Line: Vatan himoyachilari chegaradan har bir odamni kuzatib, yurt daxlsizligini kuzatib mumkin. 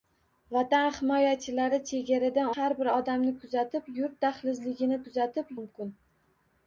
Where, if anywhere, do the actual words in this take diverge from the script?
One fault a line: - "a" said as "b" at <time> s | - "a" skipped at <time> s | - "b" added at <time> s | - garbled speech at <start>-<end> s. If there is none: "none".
none